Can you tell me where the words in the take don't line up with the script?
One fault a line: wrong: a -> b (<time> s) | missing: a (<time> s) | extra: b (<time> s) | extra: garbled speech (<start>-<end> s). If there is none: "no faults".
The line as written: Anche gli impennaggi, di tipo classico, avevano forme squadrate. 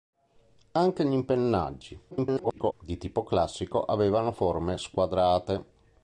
extra: garbled speech (2.1-2.7 s)